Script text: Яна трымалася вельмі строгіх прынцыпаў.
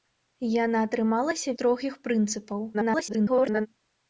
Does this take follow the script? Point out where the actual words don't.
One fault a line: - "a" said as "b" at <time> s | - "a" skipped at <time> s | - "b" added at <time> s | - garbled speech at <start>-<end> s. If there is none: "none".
- "вельмі" skipped at 1.6 s
- garbled speech at 2.7-3.7 s